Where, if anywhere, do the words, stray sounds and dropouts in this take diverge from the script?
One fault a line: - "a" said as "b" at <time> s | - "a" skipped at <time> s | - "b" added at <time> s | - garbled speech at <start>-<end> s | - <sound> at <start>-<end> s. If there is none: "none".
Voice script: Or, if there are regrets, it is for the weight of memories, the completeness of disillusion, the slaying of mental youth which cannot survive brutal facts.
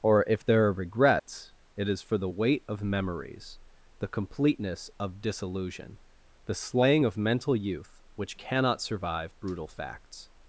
- dropout at 1.2-1.3 s